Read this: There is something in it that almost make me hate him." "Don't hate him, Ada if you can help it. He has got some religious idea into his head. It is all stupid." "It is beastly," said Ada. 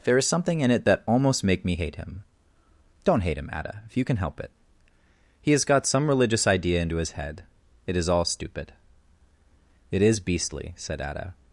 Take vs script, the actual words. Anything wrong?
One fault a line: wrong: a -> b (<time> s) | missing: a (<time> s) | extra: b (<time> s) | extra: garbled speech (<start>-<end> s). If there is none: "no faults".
no faults